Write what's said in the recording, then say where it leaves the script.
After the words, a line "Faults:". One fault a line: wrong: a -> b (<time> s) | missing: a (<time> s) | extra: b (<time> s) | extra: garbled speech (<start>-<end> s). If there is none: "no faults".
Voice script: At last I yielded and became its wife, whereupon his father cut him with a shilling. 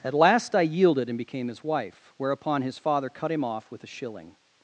At last I yielded and became his wife, whereupon his father cut him off with a shilling.
Faults:
wrong: its -> his (1.5 s)
extra: off (3.4 s)